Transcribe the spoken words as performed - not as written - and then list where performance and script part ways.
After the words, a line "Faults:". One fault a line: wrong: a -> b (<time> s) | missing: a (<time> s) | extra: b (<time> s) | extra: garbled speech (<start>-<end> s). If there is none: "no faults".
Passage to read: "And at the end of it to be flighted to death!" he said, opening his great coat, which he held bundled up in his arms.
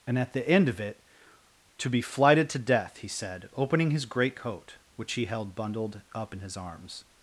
"And at the end of it to be flighted to death!" he said, opening his great coat, which he held bundled up in his arms.
Faults:
no faults